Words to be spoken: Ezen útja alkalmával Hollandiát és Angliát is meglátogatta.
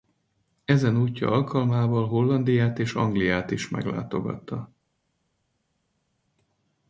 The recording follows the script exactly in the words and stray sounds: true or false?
true